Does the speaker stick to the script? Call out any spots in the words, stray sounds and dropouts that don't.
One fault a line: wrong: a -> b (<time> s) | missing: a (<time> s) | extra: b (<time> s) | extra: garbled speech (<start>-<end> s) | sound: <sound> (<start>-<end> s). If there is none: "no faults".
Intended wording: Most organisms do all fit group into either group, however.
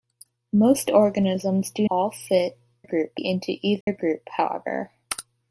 sound: dropout (3.8-3.9 s)